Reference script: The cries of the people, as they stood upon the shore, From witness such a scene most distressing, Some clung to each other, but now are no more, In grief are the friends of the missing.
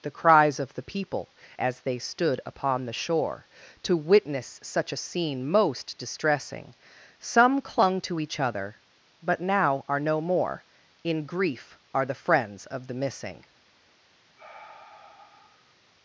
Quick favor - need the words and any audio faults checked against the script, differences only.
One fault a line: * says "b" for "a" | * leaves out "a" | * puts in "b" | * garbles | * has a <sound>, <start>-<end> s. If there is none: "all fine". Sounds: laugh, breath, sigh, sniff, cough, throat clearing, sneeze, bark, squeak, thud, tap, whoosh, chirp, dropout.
* says "To" for "From"
* has a sigh, 14.4-15.8 s